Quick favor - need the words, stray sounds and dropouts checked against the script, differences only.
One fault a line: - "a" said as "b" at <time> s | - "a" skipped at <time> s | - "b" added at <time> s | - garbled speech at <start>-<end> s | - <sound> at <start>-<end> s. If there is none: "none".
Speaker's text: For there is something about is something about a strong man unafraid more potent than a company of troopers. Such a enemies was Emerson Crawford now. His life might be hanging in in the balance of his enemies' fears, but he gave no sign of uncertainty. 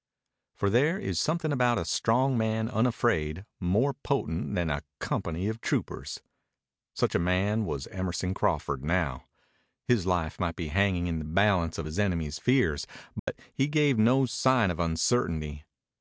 - "is something about" skipped at 1.8 s
- "enemies" said as "man" at 7.2 s
- "in" skipped at 11.2 s
- dropout at 13.2-13.3 s